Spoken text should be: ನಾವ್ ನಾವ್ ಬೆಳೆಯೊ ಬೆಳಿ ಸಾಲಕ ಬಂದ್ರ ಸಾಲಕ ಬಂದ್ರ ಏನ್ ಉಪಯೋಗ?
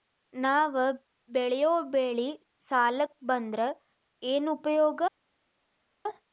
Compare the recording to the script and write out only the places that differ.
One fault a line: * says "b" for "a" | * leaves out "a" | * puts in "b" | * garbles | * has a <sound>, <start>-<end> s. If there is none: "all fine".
* leaves out "ನಾವ್"
* leaves out "ಸಾಲಕ ಬಂದ್ರ"